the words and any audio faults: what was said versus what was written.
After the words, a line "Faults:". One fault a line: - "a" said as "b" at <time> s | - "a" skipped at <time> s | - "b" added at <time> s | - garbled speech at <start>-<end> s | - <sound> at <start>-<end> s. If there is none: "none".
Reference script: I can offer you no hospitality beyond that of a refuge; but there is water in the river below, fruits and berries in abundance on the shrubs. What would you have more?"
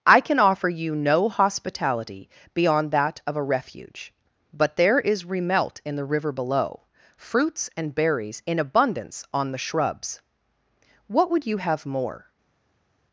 I can offer you no hospitality beyond that of a refuge; but there is remelt in the river below, fruits and berries in abundance on the shrubs. What would you have more?"
Faults:
- "water" said as "remelt" at 5.2 s